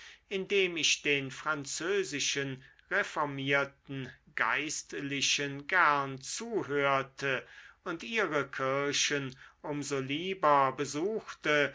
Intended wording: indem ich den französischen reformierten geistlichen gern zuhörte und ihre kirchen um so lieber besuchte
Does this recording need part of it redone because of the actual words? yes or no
no